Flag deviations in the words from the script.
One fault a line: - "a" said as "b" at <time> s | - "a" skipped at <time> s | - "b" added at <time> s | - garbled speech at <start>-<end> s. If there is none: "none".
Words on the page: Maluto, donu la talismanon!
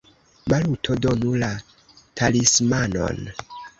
none